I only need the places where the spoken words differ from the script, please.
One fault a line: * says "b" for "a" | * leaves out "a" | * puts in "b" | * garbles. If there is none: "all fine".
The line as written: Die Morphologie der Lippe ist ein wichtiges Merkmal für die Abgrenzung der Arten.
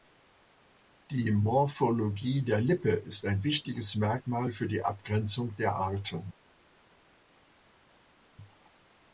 all fine